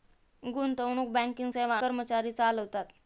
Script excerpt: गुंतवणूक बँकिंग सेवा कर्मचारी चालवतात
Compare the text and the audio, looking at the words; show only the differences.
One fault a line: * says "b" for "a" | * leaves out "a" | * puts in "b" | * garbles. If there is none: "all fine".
all fine